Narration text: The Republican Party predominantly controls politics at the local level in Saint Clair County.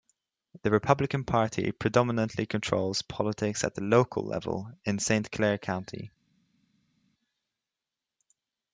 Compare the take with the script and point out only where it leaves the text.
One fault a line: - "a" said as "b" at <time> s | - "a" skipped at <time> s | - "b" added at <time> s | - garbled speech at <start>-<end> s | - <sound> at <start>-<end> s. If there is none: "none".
none